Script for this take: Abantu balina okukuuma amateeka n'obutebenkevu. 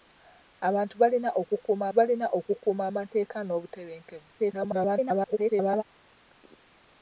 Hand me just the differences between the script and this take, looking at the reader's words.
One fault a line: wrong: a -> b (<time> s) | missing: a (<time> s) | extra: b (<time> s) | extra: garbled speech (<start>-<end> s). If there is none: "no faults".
extra: balina okukuuma (2.0 s)
extra: garbled speech (4.4-5.8 s)